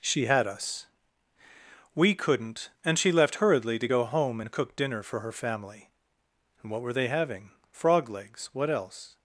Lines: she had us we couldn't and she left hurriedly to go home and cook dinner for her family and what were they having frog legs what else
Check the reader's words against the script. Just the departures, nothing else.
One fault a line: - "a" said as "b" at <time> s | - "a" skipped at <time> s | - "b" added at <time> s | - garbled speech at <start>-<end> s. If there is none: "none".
none